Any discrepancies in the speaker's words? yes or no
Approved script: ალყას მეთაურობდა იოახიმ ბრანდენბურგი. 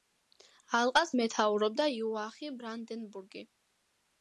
no